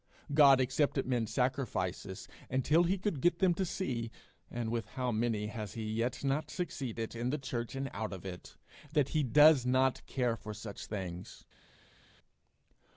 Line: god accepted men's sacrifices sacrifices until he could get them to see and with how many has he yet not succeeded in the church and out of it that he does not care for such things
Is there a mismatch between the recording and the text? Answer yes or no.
yes